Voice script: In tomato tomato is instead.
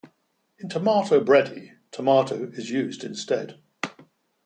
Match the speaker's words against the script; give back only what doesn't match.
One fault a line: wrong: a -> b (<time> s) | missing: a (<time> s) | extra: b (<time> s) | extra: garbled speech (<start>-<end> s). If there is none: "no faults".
extra: bredie (1.2 s)
extra: used (2.7 s)